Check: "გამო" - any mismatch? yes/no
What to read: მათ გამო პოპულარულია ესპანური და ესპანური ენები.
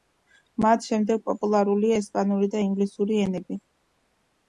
yes